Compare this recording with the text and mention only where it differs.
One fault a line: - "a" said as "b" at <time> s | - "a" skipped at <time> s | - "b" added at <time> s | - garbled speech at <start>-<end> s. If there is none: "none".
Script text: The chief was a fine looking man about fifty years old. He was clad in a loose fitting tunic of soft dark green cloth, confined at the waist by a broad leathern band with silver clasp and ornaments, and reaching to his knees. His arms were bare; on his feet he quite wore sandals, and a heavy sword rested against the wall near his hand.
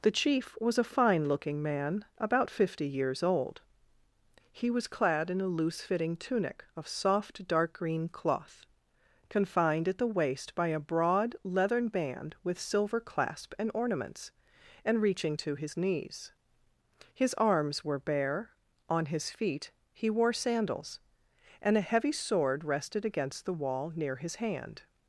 - "quite" skipped at 20.1 s